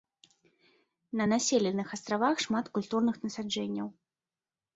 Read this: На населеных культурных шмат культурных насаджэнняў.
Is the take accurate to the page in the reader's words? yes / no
no